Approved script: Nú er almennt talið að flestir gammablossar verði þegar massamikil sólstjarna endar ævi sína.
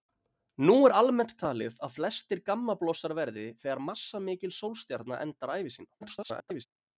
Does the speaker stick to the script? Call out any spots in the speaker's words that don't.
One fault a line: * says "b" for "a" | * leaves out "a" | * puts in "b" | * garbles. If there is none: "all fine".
* garbles